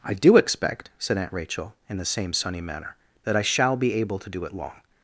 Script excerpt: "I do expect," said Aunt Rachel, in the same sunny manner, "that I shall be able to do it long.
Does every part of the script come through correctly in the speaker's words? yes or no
yes